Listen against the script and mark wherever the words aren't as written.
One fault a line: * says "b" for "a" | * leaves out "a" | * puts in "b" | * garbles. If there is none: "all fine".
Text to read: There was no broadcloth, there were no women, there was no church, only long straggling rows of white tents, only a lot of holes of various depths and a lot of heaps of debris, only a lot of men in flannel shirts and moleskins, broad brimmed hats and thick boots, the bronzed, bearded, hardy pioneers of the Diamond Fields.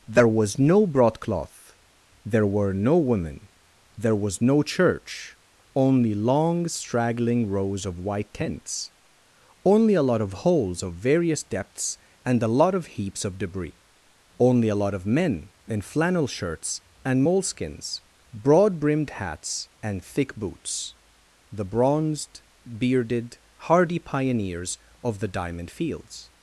all fine